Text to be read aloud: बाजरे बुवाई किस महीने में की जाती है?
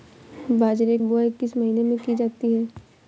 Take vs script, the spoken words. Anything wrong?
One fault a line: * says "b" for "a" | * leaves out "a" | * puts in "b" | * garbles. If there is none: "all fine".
all fine